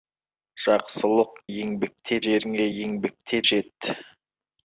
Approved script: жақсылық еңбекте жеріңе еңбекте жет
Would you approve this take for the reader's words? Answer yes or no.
yes